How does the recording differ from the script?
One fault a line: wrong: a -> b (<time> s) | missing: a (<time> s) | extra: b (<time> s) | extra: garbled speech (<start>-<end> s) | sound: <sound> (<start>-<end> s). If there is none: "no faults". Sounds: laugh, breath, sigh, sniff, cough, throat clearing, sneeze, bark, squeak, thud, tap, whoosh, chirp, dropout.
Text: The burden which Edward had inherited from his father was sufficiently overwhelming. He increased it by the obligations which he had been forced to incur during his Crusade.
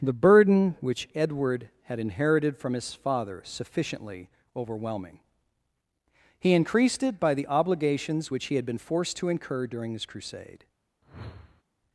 missing: was (3.4 s)
sound: whoosh (11.0-11.6 s)